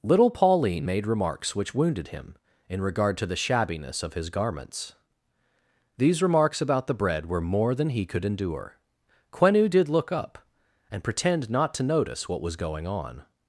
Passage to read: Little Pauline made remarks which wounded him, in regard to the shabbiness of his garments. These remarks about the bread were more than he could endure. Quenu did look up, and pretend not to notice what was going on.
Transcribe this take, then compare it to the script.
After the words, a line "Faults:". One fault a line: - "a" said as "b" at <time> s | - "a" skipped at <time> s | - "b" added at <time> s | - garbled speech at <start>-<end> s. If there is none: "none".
Little Pauline made remarks which wounded him, in regard to the shabbiness of his garments. These remarks about the bread were more than he could endure. Quenu did look up, and pretend not to notice what was going on.
Faults:
none